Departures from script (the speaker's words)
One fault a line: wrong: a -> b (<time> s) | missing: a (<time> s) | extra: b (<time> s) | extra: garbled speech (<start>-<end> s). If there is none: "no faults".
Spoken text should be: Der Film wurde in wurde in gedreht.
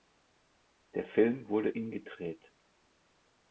missing: wurde in (1.9 s)